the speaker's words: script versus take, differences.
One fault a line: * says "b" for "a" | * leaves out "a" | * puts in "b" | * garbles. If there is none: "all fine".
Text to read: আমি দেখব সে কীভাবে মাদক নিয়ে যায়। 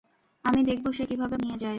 * leaves out "মাদক"